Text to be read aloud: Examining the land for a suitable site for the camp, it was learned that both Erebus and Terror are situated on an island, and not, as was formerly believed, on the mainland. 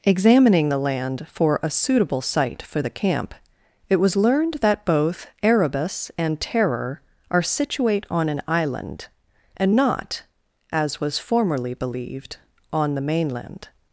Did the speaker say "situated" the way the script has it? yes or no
no